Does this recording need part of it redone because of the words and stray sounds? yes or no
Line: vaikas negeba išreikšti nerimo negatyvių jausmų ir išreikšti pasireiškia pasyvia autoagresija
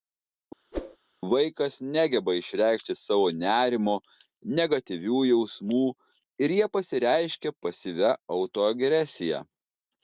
yes